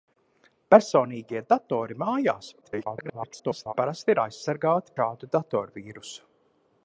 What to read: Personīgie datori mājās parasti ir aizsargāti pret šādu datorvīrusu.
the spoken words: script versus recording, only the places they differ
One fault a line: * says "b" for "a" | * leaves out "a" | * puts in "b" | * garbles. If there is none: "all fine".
* garbles
* leaves out "pret"